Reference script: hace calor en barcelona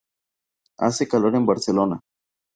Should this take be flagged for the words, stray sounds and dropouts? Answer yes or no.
no